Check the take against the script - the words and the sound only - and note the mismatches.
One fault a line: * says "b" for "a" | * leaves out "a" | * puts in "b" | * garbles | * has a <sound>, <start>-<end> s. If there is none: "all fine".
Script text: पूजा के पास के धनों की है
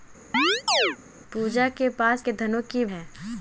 * has a chirp, 0.3-1.0 s